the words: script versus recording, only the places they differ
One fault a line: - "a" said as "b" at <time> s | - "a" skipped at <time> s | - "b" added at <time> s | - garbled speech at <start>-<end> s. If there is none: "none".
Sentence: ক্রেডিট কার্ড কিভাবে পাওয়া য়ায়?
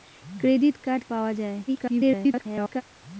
- "কিভাবে" skipped at 1.0 s
- garbled speech at 1.7-2.8 s